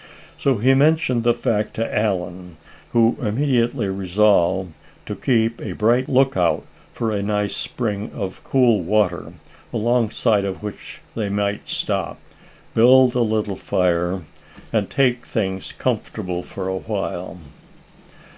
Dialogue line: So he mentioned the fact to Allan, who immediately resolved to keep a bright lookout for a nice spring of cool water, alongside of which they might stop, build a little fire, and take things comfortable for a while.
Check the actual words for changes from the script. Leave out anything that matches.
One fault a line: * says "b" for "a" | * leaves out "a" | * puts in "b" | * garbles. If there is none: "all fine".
all fine